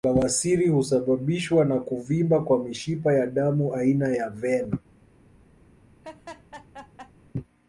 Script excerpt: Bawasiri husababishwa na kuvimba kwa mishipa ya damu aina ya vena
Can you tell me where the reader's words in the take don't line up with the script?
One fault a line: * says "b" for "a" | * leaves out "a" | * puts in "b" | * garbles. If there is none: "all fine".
all fine